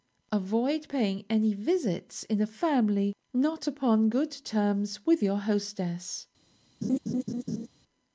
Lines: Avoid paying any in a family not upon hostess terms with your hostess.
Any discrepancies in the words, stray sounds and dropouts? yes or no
yes